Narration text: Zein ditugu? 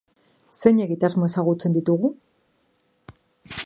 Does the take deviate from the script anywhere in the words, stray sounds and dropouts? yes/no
yes